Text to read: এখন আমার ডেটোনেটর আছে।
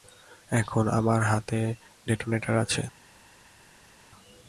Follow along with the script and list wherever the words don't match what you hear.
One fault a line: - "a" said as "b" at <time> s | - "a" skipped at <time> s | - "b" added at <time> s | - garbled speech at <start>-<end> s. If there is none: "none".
- "হাতে" added at 1.2 s